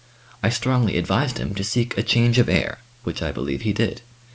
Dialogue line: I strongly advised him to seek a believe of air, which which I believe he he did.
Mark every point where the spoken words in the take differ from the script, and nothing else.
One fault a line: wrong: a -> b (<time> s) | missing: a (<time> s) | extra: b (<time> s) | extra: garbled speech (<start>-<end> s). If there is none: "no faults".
wrong: believe -> change (2.0 s)
missing: which (3.2 s)
missing: he (3.7 s)